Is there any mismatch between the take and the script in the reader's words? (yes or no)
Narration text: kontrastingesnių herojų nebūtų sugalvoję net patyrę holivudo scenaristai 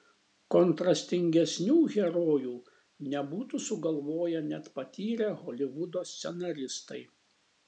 no